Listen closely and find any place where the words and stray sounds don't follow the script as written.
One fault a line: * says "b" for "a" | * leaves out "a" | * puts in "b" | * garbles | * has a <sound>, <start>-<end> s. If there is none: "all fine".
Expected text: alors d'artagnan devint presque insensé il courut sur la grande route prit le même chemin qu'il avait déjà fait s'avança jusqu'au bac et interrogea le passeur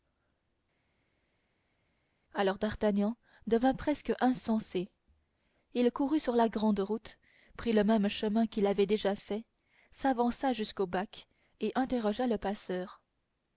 all fine